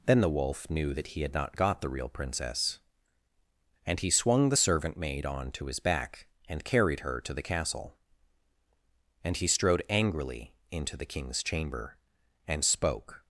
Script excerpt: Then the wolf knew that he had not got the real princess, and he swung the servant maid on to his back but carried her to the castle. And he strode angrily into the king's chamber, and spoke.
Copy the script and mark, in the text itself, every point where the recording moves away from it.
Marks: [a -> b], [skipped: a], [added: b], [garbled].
Then the wolf knew that he had not got the real princess, and he swung the servant maid on to his back [but -> and] carried her to the castle. And he strode angrily into the king's chamber, and spoke.